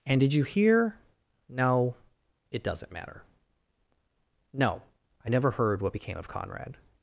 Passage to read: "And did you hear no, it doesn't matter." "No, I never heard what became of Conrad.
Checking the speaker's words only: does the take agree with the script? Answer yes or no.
yes